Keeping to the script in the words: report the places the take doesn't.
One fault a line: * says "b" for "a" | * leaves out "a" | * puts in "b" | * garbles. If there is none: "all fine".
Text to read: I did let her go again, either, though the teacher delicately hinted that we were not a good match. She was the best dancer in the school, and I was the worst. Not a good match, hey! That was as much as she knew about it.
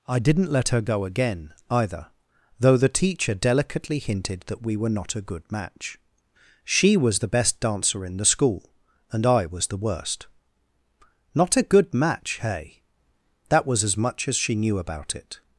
* says "didn't" for "did"